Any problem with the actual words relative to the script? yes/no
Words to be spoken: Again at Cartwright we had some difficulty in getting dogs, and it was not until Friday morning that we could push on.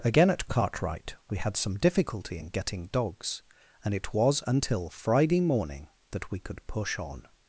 yes